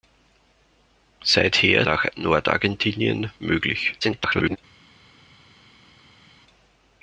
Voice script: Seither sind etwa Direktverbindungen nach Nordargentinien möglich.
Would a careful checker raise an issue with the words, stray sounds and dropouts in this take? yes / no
yes